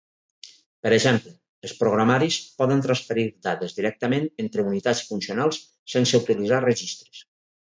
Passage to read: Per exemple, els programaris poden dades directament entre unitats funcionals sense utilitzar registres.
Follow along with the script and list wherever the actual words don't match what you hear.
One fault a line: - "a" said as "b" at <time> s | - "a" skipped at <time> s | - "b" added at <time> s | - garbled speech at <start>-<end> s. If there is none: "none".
- "transferir" added at 2.9 s